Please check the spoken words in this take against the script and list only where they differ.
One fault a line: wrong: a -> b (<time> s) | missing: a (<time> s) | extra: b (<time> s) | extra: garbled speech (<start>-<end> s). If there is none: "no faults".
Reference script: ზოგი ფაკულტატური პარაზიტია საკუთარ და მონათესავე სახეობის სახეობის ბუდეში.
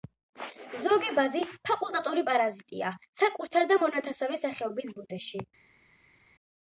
extra: ბაზი (1.2 s)
missing: სახეობის (4.9 s)